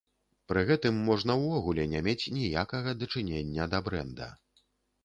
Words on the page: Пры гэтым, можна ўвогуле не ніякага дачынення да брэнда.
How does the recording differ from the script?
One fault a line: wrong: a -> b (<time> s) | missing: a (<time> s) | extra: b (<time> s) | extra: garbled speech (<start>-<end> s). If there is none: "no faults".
extra: мець (2.1 s)